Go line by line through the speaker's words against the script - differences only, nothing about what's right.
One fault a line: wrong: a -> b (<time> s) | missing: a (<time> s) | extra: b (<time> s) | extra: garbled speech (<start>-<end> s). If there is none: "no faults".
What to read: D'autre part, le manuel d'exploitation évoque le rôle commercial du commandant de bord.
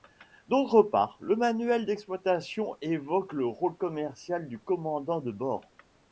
no faults